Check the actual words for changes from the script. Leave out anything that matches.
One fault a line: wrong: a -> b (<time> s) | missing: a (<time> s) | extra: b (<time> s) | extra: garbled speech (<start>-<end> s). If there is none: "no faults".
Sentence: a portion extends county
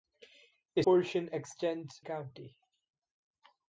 no faults